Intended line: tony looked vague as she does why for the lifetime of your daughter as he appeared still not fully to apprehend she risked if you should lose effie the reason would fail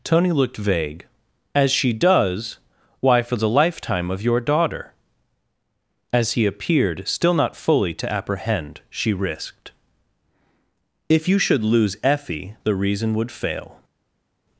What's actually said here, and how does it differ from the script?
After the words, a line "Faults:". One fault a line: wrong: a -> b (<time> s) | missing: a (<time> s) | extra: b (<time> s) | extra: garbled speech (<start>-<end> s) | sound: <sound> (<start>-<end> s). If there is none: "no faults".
tony looked vague as she does why for the lifetime of your daughter as he appeared still not fully to apprehend she risked if you should lose effie the reason would fail
Faults:
no faults